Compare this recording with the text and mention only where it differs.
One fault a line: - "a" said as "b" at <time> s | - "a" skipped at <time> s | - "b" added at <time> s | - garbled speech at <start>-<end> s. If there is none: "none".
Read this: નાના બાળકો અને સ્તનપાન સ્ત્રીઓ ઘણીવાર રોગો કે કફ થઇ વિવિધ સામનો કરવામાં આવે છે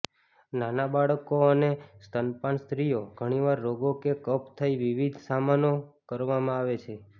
none